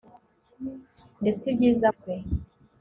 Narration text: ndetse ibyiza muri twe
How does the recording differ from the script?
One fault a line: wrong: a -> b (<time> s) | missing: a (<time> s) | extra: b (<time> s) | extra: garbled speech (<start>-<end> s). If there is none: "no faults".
missing: muri (1.9 s)